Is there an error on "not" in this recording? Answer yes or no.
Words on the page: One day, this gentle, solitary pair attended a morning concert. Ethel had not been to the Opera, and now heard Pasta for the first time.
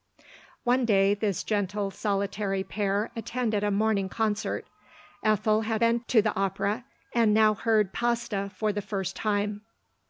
yes